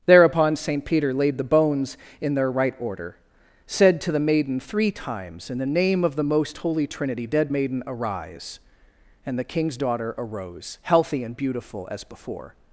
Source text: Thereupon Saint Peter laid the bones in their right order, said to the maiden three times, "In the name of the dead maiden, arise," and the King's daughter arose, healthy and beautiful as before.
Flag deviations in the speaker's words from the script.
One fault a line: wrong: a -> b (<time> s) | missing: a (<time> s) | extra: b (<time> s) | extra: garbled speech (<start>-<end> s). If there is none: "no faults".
extra: most holy Trinity (6.2 s)